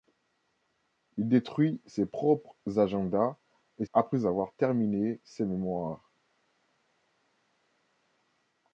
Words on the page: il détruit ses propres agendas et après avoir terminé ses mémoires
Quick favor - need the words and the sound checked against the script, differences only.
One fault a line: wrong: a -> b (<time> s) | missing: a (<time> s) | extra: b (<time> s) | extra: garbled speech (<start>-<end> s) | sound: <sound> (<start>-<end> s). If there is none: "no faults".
no faults